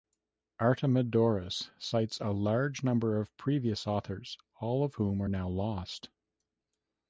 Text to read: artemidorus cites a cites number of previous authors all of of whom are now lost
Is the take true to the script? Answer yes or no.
no